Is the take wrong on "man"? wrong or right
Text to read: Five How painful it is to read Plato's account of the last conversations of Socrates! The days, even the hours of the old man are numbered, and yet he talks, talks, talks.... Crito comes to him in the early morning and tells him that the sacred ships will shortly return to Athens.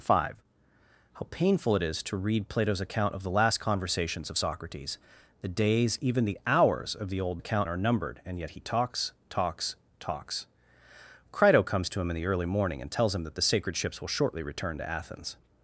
wrong